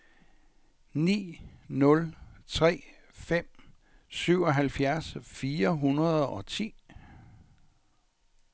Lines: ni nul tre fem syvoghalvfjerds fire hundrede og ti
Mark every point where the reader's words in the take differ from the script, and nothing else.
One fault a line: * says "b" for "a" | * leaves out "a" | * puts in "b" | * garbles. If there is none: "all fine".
all fine